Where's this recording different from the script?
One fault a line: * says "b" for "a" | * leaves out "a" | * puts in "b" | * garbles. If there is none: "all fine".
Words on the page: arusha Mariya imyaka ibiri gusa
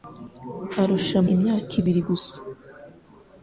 * leaves out "Mariya"